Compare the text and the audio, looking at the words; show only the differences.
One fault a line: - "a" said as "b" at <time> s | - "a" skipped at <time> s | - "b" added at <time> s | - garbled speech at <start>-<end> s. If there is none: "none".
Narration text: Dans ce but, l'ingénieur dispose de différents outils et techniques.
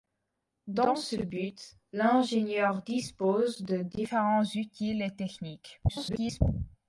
- garbled speech at 5.9-6.4 s